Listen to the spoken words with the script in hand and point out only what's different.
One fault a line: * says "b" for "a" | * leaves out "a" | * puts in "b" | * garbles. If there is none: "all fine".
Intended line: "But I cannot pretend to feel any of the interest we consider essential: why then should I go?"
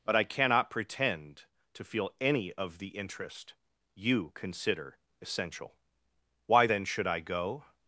* says "you" for "we"